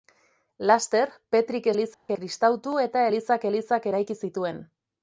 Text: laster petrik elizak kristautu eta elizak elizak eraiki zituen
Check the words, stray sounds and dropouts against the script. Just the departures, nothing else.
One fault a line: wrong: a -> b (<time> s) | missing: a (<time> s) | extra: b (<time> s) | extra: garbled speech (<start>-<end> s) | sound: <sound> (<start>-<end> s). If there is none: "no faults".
sound: dropout (1.9-2.1 s)